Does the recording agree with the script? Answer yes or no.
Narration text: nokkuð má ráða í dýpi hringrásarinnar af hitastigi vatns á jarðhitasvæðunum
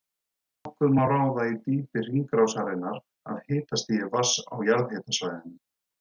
yes